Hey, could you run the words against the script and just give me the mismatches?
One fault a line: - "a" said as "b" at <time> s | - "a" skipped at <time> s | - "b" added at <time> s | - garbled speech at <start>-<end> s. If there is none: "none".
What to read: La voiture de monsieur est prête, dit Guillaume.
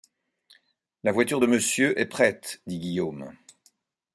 none